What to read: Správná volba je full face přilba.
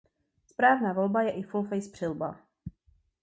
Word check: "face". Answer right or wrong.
right